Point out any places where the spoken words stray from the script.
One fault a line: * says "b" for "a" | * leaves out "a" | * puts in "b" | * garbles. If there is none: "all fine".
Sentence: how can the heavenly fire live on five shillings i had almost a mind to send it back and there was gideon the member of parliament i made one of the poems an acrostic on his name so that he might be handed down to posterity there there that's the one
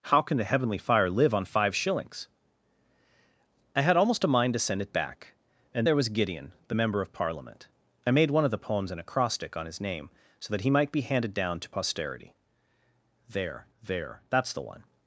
all fine